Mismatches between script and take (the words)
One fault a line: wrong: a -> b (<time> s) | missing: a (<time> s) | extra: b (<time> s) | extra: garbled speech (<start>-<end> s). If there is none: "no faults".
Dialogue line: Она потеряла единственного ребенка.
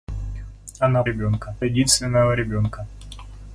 wrong: потеряла -> ребенка (1.0 s)